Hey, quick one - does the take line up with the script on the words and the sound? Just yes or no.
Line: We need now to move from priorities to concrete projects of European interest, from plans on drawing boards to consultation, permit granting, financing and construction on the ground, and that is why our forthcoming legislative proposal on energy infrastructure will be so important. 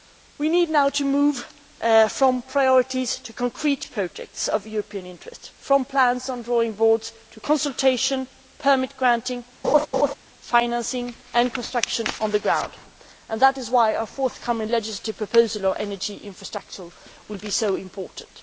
no